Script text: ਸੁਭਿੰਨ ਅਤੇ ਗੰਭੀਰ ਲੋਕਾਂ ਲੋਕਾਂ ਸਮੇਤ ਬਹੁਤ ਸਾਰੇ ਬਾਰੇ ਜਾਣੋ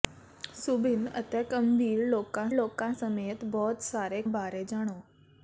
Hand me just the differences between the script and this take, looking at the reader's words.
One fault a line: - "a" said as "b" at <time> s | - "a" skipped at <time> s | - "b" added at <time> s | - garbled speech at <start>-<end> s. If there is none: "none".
none